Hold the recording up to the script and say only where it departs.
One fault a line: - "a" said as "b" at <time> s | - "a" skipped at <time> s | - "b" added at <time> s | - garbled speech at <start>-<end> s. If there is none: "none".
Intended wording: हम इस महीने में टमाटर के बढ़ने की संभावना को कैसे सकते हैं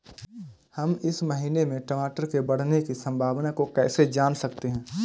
- "जान" added at 4.1 s